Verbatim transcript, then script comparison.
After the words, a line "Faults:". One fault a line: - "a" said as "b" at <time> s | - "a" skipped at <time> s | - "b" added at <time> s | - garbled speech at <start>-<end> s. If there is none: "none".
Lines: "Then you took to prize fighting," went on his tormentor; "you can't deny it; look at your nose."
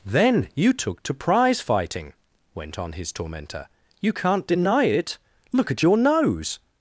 "Then you took to prize fighting," went on his tormentor; "you can't deny it; look at your nose."
Faults:
none